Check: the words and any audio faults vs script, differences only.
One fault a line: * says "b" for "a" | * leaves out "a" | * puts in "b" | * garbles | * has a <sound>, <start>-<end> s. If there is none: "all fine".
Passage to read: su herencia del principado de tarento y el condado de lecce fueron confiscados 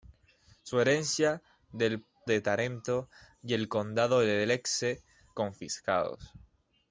* leaves out "principado"
* leaves out "fueron"